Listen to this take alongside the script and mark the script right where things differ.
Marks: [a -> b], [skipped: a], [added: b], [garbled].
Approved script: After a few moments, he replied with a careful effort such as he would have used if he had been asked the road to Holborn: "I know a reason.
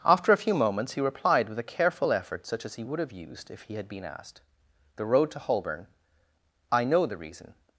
After a few moments, he replied with a careful effort such as he would have used if he had been asked the road to Holborn: "I know [a -> the] reason.